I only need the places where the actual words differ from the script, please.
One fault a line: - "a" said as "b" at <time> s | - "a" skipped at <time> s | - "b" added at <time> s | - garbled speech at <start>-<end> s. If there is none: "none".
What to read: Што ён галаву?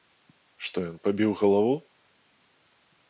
- "пабіў" added at 1.1 s